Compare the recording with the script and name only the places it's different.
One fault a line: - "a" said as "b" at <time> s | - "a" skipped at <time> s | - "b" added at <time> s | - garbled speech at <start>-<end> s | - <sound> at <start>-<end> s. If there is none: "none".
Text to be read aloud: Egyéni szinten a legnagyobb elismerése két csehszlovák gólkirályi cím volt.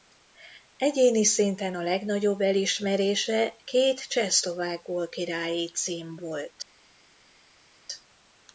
none